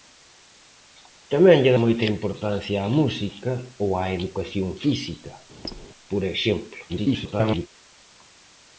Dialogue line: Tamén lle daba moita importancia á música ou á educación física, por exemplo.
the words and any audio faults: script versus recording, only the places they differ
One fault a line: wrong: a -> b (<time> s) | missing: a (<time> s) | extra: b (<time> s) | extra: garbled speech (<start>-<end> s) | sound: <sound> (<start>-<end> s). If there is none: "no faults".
missing: daba (1.8 s)
sound: squeak (5.6-5.9 s)
extra: garbled speech (6.9-7.7 s)